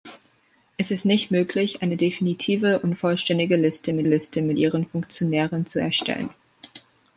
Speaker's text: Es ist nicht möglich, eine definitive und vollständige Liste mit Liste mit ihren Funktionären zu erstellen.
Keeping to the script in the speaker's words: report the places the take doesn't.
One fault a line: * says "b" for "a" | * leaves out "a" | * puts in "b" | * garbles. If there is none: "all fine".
all fine